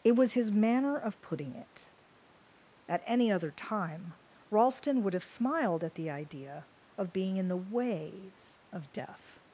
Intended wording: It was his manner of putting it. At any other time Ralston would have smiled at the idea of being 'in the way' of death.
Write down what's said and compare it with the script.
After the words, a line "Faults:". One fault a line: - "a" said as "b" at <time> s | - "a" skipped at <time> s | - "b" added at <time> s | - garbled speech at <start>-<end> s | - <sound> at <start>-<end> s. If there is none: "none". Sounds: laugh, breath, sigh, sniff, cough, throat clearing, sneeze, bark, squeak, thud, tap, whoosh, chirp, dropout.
It was his manner of putting it. At any other time Ralston would have smiled at the idea of being 'in the ways' of death.
Faults:
- "way" said as "ways" at 7.6 s